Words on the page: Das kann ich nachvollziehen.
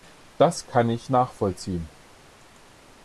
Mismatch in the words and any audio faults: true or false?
false